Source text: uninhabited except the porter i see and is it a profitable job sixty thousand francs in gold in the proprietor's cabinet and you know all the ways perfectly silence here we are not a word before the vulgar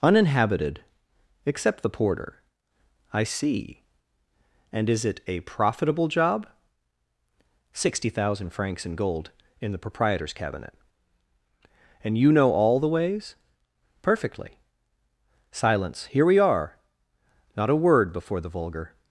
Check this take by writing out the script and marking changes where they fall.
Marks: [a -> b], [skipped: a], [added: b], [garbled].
uninhabited except the porter i see and is it a profitable job sixty thousand francs in gold in the proprietor's cabinet and you know all the ways perfectly silence here we are not a word before the vulgar